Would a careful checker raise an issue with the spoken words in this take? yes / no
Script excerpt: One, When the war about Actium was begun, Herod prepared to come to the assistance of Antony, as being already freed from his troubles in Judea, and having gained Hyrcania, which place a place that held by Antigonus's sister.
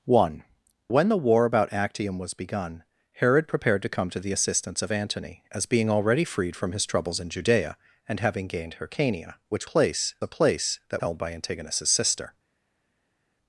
no